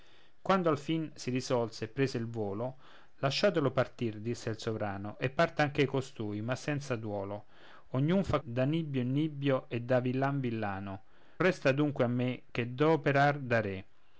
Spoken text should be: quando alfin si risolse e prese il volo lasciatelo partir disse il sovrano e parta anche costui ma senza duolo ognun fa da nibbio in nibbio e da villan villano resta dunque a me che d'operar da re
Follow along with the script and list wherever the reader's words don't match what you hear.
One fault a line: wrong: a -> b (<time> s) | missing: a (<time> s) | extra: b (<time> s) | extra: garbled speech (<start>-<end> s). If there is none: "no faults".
no faults